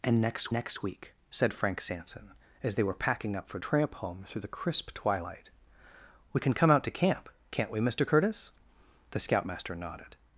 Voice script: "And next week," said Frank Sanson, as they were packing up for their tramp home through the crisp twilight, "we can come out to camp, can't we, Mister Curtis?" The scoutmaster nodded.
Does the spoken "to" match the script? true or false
true